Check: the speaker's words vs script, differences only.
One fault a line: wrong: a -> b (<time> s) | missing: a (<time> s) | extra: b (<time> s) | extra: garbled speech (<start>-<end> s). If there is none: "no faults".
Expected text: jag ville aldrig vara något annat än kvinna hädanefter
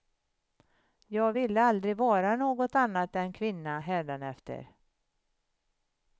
no faults